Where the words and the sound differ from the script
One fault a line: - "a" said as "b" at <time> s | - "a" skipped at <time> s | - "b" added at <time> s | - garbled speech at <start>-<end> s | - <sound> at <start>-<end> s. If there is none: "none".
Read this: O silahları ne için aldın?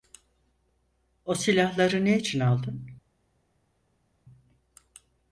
none